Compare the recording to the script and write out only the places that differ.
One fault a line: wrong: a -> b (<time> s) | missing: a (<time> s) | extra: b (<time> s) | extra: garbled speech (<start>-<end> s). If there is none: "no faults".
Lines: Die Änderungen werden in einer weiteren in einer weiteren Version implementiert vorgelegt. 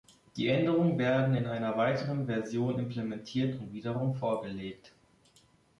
wrong: in einer weiteren Version implementiert -> Version implementiert und wiederum (2.3 s)